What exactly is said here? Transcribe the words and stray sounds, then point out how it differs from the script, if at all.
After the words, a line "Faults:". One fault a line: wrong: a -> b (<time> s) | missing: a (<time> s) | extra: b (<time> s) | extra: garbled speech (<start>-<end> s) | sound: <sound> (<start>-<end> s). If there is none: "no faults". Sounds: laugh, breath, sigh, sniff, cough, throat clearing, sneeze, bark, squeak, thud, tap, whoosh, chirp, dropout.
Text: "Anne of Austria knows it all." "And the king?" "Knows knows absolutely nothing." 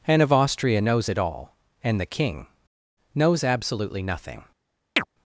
"Anne of Austria knows it all." "And the king?" "Knows absolutely nothing."
Faults:
missing: knows (3.4 s)
sound: chirp (5.0-5.1 s)